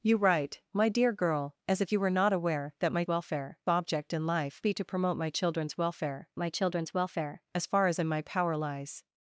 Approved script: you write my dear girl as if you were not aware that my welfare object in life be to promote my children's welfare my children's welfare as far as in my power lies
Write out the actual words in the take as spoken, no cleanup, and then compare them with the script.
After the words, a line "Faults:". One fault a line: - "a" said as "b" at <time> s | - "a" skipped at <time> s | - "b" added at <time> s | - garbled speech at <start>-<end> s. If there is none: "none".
you write my dear girl as if you were not aware that my welfare object in life be to promote my children's welfare my children's welfare as far as in my power lies
Faults:
none